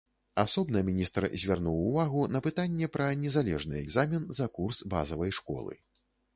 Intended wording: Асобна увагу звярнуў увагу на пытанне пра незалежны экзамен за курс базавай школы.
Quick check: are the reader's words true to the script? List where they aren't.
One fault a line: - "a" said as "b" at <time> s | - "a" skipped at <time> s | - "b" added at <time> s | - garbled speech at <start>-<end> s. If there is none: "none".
- "увагу" said as "міністр" at 0.9 s